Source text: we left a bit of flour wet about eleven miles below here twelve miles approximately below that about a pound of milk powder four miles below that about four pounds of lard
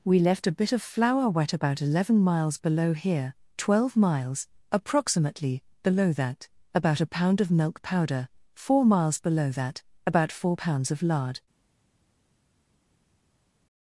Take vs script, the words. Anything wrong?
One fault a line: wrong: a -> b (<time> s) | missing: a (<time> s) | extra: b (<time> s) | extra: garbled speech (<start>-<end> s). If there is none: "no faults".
no faults